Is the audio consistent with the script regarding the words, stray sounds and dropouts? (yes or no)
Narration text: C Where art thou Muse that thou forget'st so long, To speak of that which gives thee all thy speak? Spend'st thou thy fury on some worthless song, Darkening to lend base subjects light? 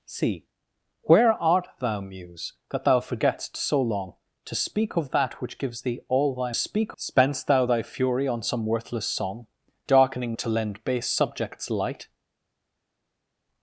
yes